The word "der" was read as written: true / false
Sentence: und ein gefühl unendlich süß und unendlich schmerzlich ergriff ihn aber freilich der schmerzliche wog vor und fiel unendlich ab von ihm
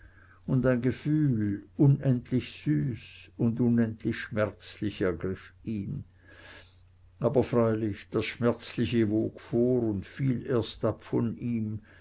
false